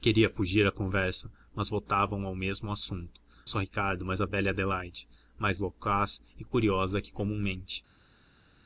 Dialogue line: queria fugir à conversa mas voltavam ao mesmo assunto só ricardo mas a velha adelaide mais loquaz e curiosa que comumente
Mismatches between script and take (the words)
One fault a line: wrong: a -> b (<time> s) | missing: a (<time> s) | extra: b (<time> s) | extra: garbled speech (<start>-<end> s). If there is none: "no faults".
no faults